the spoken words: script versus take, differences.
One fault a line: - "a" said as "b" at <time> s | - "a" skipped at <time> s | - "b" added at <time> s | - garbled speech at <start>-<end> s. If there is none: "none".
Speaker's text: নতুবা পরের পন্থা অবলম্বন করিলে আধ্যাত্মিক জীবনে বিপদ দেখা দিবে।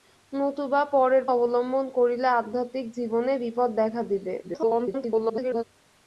- "পন্থা" skipped at 1.2 s
- garbled speech at 4.4-5.6 s